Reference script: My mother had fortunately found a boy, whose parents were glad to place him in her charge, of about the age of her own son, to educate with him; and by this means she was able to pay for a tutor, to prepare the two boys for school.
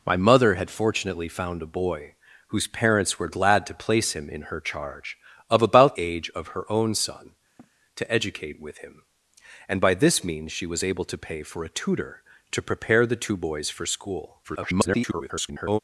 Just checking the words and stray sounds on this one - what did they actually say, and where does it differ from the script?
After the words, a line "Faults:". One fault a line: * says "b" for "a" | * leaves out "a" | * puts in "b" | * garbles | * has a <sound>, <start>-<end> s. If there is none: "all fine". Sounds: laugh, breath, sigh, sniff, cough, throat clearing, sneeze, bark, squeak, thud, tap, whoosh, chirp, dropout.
My mother had fortunately found a boy, whose parents were glad to place him in her charge, of about age of her own son, to educate with him; and by this means she was able to pay for a tutor, to prepare the two boys for school. [garbled]
Faults:
* leaves out "the"
* has a sniff, 7.6-7.7 s
* garbles